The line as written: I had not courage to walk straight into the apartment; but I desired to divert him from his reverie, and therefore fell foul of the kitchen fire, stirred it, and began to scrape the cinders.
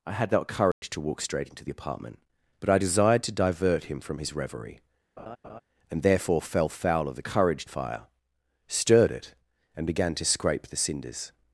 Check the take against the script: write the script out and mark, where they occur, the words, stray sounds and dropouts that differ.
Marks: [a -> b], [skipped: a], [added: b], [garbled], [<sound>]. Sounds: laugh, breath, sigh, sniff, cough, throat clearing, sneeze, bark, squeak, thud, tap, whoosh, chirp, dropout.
I had not courage [dropout] to walk straight into the apartment; but I desired to divert him from his reverie, [laugh] and therefore fell foul of the [kitchen -> courage] fire, stirred it, and began to scrape the cinders.